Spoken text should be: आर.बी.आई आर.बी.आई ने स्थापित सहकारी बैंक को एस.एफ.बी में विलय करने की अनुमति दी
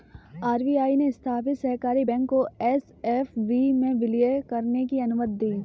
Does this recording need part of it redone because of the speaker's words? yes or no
yes